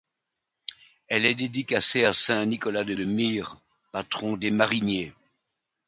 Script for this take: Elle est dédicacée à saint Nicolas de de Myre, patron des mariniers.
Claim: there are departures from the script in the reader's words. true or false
false